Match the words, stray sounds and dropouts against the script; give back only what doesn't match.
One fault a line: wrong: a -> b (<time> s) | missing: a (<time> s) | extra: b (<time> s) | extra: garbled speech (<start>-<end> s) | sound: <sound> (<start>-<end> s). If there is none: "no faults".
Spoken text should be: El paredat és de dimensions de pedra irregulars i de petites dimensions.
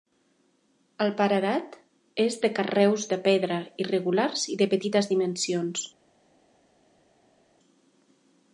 wrong: dimensions -> carreus (2.6 s)